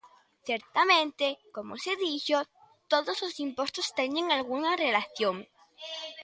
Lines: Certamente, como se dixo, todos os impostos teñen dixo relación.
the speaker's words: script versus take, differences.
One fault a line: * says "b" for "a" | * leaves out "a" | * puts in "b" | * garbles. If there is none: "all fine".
* says "algunha" for "dixo"